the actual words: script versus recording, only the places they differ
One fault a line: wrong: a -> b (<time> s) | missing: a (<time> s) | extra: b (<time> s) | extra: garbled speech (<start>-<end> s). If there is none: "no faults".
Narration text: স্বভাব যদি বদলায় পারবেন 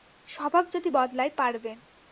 no faults